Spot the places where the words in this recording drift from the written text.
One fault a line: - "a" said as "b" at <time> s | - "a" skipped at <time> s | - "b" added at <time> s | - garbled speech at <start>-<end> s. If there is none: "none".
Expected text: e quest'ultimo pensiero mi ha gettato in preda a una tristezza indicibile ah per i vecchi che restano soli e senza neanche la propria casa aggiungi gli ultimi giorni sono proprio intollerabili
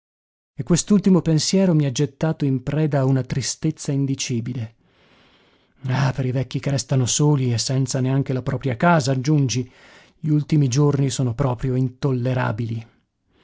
none